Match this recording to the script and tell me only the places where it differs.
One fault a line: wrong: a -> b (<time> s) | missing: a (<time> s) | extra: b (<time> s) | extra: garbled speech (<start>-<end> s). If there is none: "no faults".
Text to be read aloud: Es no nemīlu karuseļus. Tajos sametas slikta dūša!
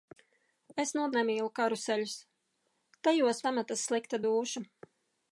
no faults